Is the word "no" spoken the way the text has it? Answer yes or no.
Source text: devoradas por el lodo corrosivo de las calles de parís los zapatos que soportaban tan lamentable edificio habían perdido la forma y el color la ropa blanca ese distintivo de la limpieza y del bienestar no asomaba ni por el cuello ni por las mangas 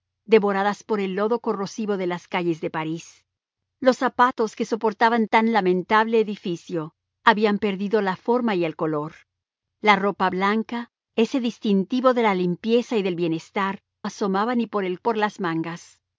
no